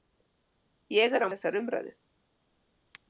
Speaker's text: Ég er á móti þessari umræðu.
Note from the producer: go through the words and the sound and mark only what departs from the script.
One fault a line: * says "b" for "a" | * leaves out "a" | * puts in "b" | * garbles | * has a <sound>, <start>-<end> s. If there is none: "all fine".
* leaves out "móti"